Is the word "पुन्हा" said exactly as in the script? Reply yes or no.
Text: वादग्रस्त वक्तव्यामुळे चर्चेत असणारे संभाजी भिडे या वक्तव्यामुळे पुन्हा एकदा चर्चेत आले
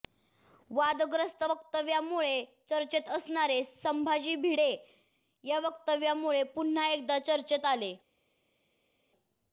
yes